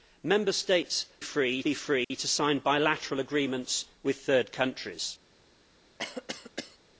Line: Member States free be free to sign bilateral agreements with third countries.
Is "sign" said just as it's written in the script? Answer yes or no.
yes